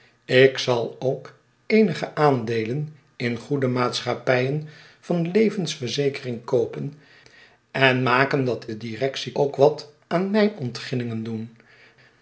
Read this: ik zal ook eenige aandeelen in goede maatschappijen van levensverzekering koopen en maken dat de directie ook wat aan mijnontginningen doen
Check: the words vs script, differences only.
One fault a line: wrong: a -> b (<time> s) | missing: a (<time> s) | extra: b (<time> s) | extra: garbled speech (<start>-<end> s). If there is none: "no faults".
no faults